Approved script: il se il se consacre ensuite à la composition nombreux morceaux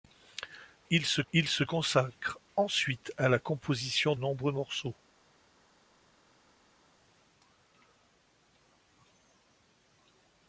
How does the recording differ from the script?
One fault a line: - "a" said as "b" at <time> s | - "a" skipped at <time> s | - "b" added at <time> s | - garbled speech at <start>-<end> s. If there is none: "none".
none